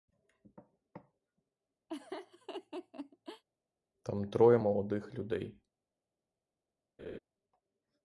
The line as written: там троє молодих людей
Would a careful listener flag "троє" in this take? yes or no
no